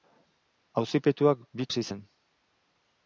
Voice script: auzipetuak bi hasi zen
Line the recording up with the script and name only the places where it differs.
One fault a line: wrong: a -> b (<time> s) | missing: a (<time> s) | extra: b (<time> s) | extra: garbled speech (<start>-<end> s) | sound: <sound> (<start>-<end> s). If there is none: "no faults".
no faults